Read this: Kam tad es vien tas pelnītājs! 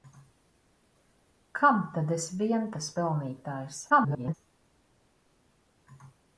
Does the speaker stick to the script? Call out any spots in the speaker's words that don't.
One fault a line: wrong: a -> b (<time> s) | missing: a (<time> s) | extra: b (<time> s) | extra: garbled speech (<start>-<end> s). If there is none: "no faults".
extra: garbled speech (3.9-4.3 s)